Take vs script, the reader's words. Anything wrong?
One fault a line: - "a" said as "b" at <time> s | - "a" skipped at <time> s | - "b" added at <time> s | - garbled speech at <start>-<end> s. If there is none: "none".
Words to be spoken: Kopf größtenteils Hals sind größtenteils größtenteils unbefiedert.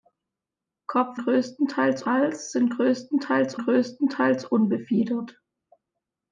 none